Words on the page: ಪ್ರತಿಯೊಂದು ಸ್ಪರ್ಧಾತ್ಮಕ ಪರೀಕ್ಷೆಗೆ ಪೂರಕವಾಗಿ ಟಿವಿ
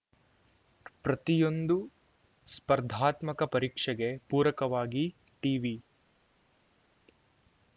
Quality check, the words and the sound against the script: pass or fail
pass